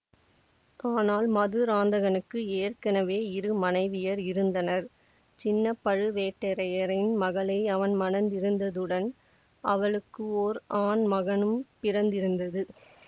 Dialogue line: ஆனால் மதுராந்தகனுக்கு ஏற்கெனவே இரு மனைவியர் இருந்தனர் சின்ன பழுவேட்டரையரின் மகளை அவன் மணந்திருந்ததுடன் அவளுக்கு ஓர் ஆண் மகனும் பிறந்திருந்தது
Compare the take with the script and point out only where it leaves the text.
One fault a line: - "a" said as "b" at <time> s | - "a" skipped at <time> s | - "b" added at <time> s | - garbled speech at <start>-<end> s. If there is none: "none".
none